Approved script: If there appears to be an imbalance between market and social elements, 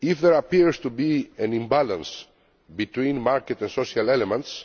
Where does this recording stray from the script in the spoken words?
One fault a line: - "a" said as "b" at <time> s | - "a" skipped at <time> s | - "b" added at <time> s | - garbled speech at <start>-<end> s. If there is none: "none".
none